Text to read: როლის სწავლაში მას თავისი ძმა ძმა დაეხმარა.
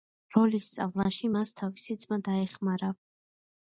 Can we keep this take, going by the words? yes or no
no